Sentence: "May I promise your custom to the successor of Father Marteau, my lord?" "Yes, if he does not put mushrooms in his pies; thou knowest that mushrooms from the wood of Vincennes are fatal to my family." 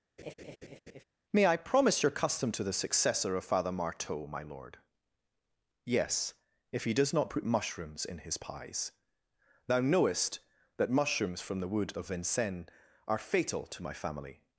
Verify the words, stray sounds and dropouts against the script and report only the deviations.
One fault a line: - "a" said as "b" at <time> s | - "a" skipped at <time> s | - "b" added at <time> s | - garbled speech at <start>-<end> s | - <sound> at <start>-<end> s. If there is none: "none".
- laugh at 0.2-1.0 s